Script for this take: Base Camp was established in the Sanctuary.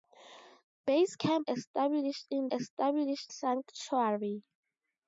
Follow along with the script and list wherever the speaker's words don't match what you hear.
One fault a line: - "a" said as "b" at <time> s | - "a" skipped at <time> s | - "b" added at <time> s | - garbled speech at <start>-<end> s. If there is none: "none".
- "was" skipped at 1.5 s
- "the" said as "established" at 2.5 s